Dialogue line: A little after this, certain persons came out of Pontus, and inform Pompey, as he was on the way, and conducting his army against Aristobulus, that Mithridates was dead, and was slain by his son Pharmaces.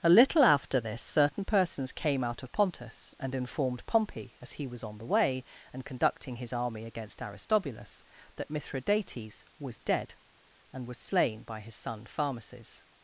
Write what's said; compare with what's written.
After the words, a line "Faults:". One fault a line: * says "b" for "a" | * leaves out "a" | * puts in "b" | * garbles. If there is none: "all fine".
A little after this, certain persons came out of Pontus, and informed Pompey, as he was on the way, and conducting his army against Aristobulus, that Mithridates was dead, and was slain by his son Pharmaces.
Faults:
* says "informed" for "inform"